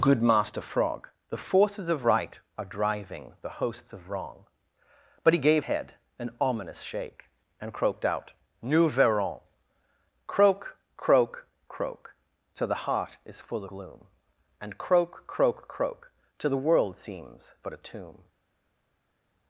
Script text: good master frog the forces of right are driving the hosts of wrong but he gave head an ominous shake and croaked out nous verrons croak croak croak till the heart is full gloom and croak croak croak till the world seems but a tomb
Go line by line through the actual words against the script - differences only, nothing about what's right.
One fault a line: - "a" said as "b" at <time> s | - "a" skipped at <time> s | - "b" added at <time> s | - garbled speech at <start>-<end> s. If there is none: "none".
none